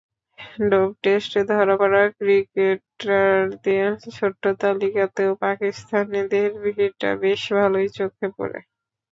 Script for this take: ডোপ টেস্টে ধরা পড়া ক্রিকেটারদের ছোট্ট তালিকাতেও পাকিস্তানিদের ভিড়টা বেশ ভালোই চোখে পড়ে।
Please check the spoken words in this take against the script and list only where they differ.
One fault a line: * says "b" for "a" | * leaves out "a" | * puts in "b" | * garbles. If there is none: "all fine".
all fine